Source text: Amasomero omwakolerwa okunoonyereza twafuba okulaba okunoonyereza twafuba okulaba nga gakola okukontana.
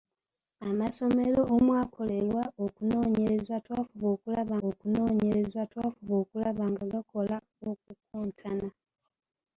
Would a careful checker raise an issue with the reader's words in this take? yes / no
no